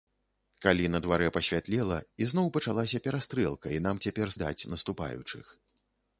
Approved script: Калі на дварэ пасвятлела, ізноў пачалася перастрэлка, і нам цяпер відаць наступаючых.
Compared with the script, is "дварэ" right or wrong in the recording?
right